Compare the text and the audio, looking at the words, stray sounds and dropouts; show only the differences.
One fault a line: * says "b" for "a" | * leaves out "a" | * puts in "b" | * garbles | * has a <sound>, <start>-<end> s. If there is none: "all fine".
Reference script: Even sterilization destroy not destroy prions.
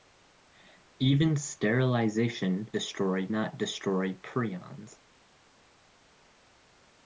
all fine